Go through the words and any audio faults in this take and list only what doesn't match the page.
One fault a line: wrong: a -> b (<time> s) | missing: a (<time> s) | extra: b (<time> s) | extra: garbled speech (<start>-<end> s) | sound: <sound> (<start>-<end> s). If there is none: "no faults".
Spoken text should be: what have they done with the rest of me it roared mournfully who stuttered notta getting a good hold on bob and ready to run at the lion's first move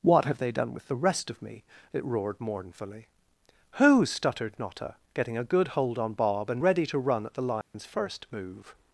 sound: dropout (7.6-7.7 s)